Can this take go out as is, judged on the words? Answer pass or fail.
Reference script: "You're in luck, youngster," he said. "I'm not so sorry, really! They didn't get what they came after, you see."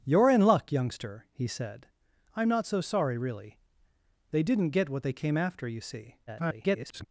fail